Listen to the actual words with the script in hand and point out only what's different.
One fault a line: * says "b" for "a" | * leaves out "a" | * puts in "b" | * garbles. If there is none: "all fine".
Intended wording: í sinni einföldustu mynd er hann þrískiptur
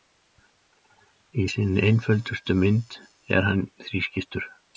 all fine